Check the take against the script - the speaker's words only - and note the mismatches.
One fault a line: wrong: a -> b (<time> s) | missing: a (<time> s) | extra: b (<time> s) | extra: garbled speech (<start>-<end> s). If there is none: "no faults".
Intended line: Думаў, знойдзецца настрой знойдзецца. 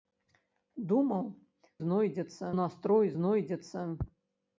no faults